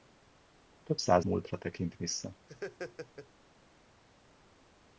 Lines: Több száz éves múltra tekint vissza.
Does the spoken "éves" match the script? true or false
false